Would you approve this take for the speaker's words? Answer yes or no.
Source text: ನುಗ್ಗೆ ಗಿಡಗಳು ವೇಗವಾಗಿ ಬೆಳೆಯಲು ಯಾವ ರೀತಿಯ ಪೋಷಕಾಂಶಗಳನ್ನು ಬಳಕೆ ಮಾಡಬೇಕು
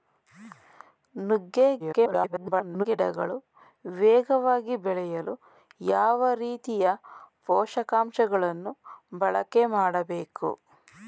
no